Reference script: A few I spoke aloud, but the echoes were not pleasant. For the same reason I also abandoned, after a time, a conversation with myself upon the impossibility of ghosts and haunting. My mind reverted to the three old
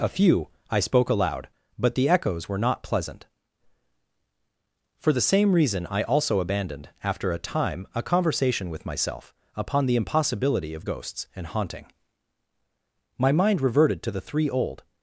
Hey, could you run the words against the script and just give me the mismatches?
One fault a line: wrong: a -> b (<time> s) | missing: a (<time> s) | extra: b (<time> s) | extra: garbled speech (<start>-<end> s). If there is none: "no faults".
no faults